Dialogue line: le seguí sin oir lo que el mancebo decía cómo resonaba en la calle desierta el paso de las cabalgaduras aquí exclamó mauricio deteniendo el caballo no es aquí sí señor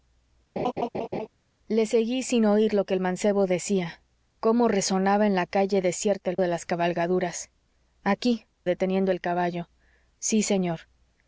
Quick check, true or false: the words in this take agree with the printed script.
false